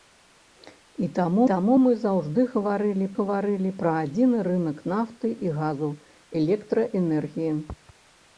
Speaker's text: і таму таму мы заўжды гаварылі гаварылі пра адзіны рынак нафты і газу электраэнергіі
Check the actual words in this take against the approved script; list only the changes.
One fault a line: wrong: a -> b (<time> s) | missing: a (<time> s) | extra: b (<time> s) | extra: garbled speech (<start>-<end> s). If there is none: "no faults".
no faults